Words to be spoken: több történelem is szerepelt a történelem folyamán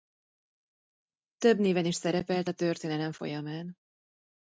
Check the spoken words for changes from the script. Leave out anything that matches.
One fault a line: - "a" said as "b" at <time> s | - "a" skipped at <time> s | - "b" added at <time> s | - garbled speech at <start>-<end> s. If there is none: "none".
- "történelem" said as "néven" at 1.6 s